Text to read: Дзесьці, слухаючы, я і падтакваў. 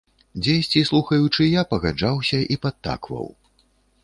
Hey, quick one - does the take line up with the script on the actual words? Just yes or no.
no